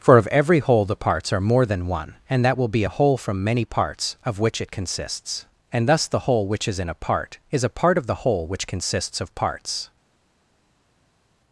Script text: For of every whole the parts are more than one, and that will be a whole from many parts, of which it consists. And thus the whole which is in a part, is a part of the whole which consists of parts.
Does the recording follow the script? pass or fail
pass